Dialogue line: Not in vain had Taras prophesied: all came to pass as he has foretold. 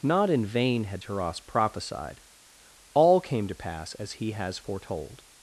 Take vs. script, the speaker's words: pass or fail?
pass